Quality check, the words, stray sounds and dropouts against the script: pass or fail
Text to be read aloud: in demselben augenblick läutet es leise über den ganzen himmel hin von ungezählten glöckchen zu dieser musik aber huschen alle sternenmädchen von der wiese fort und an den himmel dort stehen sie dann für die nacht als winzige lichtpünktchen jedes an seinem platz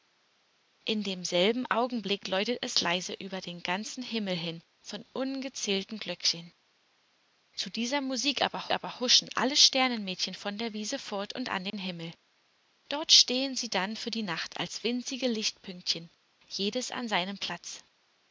fail